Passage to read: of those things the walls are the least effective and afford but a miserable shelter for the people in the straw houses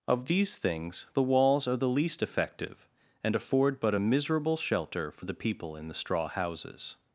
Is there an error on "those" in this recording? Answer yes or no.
yes